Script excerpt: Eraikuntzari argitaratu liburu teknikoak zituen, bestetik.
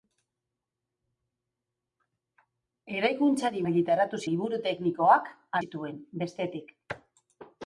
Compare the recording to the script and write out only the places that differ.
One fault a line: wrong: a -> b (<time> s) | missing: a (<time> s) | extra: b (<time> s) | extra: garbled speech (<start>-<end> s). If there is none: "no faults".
no faults